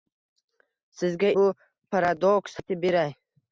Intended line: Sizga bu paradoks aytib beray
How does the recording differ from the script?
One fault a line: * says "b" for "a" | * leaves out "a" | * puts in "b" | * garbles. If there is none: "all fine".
all fine